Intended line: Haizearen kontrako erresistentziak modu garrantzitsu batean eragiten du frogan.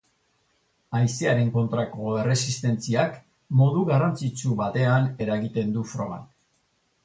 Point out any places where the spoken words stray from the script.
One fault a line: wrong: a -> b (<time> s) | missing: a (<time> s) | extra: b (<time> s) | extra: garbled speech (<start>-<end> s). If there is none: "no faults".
no faults